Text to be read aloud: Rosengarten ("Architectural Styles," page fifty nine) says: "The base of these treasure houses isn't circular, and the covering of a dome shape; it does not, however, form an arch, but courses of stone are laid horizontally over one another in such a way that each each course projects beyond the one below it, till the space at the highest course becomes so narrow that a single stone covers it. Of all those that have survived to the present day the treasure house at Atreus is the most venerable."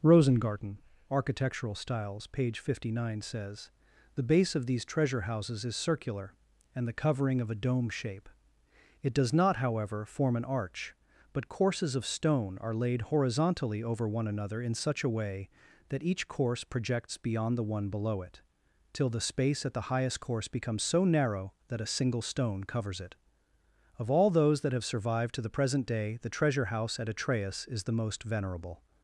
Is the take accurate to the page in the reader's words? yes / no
no